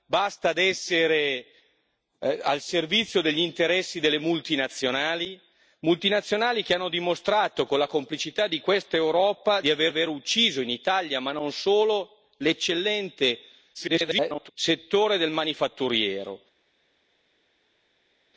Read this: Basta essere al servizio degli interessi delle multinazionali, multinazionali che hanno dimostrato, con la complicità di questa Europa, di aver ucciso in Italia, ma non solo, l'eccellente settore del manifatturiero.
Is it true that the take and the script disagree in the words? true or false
true